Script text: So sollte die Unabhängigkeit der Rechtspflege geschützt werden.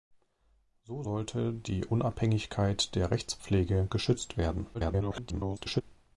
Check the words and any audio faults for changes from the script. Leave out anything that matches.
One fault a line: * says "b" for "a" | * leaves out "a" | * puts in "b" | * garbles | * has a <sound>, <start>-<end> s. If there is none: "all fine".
* garbles